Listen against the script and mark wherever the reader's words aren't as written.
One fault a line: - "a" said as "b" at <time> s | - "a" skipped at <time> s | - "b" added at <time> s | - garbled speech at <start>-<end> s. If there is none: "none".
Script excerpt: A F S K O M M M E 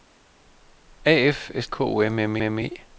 none